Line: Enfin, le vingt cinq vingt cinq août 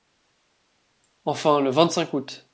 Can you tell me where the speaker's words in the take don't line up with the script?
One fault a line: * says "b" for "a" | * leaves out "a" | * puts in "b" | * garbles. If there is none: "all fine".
* leaves out "vingt cinq"